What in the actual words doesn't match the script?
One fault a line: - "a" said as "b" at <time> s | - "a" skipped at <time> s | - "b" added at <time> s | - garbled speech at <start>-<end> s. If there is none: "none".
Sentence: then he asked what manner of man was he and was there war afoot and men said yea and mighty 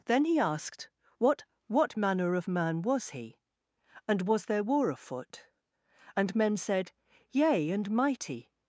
- "what" added at 1.7 s